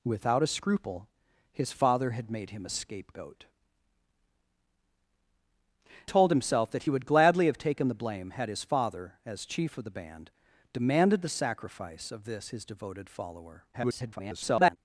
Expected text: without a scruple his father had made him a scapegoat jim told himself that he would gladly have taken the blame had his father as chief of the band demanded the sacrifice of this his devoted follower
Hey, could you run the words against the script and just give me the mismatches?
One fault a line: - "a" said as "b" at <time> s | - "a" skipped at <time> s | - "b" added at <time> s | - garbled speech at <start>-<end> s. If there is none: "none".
- "jim" skipped at 3.5 s
- garbled speech at 13.7-14.8 s